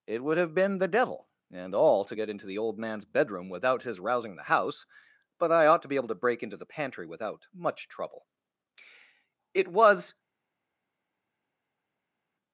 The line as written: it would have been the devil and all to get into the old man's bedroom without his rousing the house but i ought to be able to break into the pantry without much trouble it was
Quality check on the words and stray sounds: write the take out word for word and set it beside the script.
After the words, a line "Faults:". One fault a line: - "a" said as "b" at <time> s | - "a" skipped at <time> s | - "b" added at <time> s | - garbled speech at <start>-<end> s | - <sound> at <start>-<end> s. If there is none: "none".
it would have been the devil and all to get into the old man's bedroom without his rousing the house but i ought to be able to break into the pantry without much trouble it was
Faults:
none